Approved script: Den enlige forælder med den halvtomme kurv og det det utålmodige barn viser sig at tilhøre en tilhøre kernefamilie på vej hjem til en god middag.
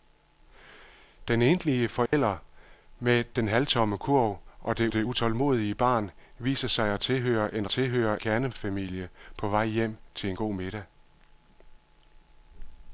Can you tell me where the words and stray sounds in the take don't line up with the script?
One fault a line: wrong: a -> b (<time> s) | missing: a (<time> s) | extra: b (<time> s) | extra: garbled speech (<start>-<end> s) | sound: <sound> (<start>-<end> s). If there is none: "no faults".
sound: dropout (2.1-2.1 s)